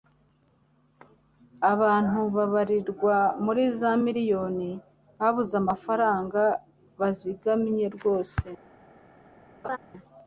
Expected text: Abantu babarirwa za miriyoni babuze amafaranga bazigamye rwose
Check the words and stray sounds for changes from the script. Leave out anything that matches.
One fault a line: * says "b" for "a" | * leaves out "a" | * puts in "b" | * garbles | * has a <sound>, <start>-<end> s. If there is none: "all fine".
* puts in "muri"
* has a laugh, 9.6-9.8 s